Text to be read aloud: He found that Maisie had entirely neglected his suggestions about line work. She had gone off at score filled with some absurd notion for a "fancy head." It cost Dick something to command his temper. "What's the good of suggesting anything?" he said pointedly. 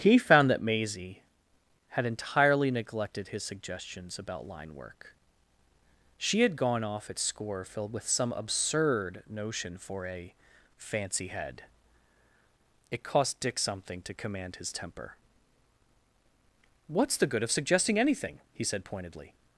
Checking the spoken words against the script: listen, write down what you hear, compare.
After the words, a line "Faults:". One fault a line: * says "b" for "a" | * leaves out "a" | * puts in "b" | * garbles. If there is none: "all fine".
He found that Maisie had entirely neglected his suggestions about line work. She had gone off at score filled with some absurd notion for a "fancy head." It cost Dick something to command his temper. "What's the good of suggesting anything?" he said pointedly.
Faults:
all fine